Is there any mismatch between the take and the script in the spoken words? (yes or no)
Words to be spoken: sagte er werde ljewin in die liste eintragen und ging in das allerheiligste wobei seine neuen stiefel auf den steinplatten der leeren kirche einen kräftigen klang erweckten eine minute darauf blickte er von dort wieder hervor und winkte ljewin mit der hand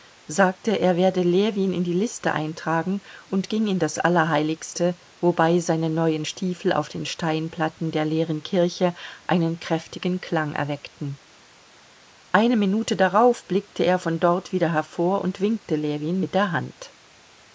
no